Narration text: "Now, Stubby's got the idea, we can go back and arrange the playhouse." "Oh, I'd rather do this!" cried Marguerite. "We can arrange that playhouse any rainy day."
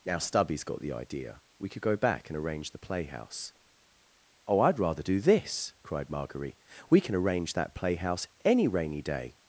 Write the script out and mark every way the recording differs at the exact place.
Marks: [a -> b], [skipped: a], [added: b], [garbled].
"Now, Stubby's got the idea, we [can -> could] go back and arrange the playhouse." "Oh, I'd rather do this!" cried Marguerite. "We can arrange that playhouse any rainy day."